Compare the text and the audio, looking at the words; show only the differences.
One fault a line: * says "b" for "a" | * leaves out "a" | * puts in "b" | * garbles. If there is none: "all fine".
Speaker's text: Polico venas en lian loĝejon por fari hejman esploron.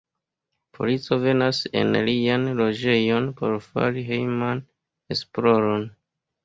all fine